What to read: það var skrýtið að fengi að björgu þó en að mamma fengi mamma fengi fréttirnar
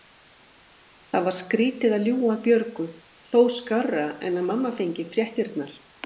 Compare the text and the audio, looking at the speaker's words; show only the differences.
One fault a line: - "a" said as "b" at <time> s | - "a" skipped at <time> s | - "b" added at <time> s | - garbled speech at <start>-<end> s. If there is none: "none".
- "fengi" said as "ljúga" at 2.1 s
- "skárra" added at 3.5 s
- "mamma fengi" skipped at 5.1 s